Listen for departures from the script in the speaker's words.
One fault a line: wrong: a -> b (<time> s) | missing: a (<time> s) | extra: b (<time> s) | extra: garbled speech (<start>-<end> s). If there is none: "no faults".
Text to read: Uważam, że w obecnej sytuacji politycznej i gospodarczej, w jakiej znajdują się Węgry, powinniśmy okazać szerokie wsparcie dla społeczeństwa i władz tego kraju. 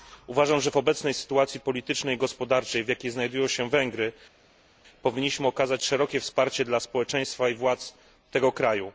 no faults